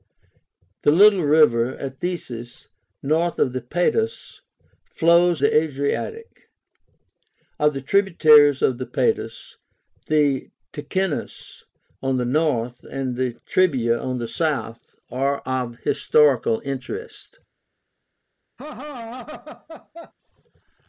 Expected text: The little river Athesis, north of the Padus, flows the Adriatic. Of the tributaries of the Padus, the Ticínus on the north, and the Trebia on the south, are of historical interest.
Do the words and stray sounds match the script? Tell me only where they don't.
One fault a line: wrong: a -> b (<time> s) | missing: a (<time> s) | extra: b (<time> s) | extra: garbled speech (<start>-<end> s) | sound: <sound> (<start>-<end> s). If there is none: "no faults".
sound: laugh (18.6-20.1 s)